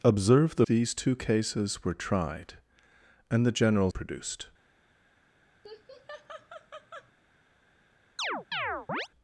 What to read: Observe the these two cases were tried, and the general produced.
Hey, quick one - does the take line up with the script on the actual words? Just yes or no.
yes